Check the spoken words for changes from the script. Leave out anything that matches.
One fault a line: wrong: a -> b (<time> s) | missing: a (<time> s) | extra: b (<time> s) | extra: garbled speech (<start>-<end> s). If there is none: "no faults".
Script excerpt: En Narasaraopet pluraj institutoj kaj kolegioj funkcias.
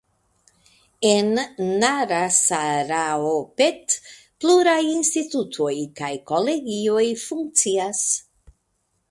no faults